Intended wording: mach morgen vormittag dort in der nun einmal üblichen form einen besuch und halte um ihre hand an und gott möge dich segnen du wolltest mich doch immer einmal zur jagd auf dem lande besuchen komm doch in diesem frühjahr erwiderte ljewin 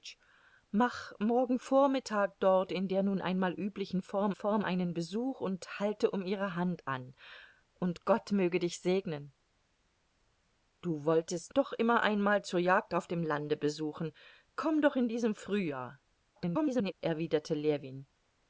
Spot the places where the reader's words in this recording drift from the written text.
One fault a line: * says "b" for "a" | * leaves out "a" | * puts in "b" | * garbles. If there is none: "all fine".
* puts in "form"
* leaves out "mich"
* garbles